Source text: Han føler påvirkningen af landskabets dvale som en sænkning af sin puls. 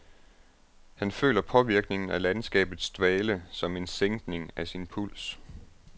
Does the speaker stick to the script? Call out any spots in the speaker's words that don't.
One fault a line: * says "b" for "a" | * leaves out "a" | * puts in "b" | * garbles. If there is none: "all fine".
all fine